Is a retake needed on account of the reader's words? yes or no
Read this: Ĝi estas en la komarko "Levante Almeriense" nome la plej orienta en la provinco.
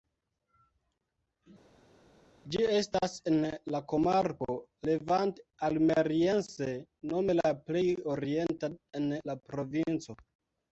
no